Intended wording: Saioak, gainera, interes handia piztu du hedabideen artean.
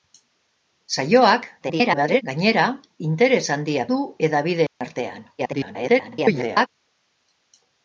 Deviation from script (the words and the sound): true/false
true